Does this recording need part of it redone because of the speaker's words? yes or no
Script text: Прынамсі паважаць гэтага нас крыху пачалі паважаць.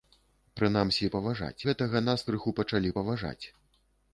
no